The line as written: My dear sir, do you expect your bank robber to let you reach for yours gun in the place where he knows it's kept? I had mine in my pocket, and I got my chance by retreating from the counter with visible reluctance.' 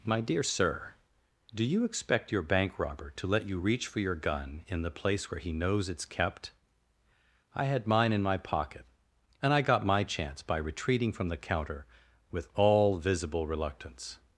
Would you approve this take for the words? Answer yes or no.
no